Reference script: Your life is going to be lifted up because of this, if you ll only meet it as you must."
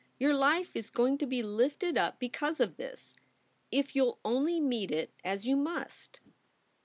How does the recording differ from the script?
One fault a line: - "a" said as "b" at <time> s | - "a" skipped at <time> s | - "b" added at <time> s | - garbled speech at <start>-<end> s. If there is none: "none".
none